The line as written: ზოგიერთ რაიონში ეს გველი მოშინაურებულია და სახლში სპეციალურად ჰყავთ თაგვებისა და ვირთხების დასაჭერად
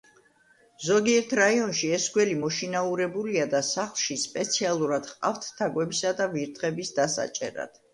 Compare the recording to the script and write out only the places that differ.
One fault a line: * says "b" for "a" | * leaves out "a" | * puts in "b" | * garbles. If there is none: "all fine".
all fine